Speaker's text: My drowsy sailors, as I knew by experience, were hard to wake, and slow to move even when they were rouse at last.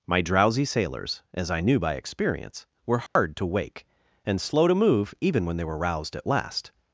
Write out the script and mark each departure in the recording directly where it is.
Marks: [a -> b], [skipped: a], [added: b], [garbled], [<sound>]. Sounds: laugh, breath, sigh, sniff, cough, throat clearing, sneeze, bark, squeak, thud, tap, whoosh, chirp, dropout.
My drowsy sailors, as I knew by experience, were hard [dropout] to wake, and slow to move even when they were [rouse -> roused] at last.